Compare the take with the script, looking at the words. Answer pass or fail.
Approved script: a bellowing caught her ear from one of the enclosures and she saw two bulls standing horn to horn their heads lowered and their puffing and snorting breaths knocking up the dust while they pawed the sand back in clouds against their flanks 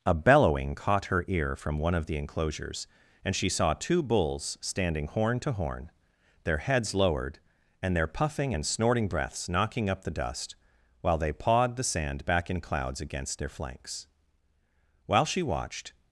fail